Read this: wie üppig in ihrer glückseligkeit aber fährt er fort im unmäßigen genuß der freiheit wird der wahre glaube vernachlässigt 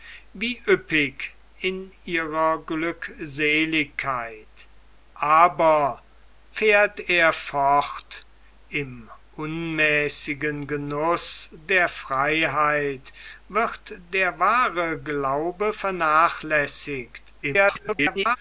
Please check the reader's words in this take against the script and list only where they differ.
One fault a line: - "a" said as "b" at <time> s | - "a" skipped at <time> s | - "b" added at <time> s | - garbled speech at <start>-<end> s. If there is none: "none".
- garbled speech at 17.4-18.4 s